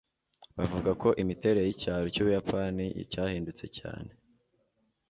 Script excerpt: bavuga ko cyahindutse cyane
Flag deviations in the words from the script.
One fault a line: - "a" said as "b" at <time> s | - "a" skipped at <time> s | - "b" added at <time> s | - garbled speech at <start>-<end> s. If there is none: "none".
- "imiterere y'icyaro cy'ubuyapani" added at 1.2 s